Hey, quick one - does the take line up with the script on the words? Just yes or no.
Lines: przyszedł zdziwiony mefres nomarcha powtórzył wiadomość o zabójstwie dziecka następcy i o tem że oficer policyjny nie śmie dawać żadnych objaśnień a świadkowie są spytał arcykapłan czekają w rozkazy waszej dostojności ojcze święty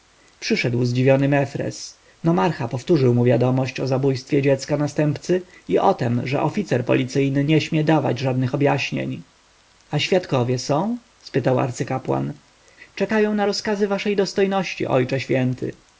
no